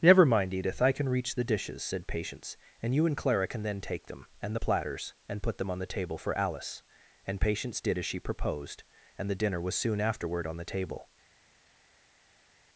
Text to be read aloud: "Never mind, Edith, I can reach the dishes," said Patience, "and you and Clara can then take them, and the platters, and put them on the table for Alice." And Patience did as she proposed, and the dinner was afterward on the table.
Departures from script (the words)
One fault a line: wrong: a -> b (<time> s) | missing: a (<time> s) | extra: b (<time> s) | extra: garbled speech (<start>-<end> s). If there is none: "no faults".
extra: soon (9.8 s)